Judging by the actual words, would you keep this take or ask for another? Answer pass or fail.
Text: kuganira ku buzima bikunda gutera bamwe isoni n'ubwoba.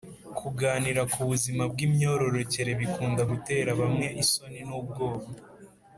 fail